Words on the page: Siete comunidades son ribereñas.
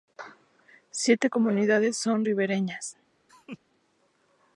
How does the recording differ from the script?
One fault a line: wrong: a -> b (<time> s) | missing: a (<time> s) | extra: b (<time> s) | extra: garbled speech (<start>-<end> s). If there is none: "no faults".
no faults